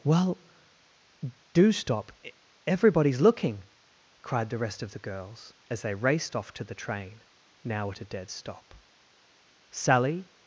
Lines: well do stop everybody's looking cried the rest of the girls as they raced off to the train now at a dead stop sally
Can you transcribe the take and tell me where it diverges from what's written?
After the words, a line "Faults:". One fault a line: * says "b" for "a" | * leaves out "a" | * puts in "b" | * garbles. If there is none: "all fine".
well do stop everybody's looking cried the rest of the girls as they raced off to the train now at a dead stop sally
Faults:
all fine